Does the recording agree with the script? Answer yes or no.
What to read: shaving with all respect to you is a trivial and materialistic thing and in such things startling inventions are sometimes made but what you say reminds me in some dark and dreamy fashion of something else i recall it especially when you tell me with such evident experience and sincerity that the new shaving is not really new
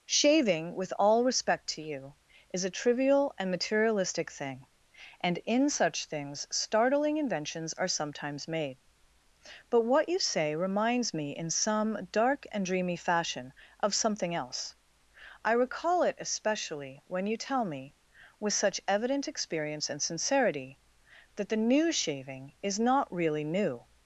yes